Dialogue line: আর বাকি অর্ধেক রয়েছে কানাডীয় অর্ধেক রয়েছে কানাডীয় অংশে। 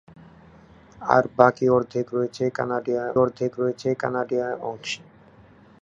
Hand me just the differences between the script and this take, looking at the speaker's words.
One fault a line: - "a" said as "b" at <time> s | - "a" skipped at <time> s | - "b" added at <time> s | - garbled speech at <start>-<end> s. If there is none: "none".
none